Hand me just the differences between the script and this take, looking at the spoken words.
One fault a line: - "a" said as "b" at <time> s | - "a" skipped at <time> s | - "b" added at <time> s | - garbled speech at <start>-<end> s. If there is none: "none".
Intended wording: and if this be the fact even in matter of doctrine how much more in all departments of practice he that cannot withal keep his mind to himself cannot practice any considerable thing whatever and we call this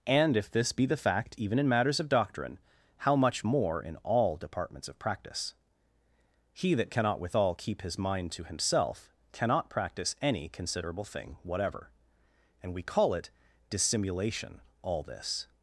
- "matter" said as "matters" at 1.7 s
- "it dissimulation all" added at 13.1 s